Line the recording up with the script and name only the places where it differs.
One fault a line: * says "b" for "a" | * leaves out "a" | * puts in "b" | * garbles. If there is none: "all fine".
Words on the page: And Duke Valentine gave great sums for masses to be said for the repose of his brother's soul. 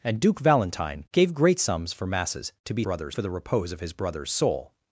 * says "brother's" for "said"